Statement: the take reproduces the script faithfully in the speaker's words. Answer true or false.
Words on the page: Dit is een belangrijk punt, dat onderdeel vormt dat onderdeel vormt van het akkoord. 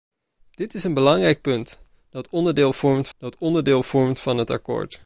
true